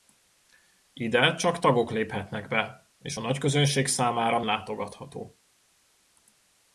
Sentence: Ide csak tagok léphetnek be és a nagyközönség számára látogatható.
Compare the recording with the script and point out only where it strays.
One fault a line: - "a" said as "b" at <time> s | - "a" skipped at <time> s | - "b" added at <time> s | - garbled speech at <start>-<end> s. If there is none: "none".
none